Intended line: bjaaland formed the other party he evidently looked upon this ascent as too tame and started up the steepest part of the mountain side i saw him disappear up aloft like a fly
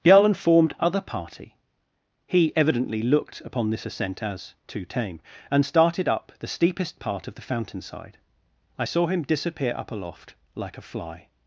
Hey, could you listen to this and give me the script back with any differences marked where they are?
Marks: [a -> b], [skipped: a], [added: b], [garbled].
bjaaland formed [skipped: the] other party he evidently looked upon this ascent as too tame and started up the steepest part of the [mountain -> fountain] side i saw him disappear up aloft like a fly